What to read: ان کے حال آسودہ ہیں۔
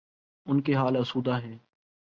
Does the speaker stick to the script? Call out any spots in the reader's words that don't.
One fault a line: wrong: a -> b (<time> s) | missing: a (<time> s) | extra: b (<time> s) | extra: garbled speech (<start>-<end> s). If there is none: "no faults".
no faults